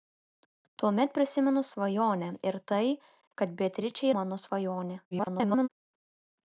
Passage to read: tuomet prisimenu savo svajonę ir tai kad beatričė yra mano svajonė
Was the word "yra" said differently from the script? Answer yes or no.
yes